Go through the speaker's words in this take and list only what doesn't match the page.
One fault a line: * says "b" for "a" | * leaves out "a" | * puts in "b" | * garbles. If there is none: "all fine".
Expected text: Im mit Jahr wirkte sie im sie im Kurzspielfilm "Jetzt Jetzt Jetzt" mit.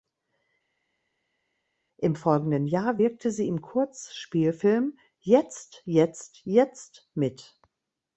* says "folgenden" for "mit"
* leaves out "sie im"